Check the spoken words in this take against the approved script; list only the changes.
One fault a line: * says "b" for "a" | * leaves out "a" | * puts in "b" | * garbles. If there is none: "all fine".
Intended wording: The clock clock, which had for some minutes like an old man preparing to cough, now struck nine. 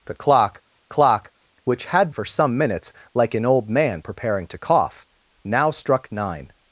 all fine